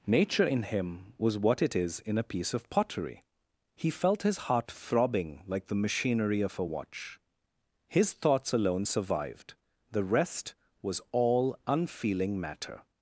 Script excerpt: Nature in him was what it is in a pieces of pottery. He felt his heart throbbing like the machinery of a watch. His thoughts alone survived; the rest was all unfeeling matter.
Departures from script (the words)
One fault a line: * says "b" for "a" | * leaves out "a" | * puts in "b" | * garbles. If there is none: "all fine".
* says "piece" for "pieces"